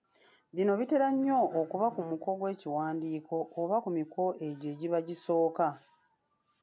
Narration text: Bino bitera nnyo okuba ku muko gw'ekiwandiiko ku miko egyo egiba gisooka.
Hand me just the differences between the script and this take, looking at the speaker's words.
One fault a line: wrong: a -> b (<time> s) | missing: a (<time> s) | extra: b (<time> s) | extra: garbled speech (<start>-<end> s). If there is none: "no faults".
extra: oba (3.6 s)